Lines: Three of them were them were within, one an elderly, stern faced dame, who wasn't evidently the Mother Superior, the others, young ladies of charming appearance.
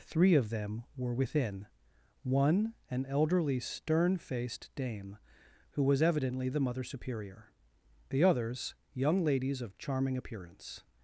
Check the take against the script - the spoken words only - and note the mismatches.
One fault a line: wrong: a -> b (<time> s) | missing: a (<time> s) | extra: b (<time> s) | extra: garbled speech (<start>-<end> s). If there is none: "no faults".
missing: them were (1.1 s)
wrong: wasn't -> was (5.8 s)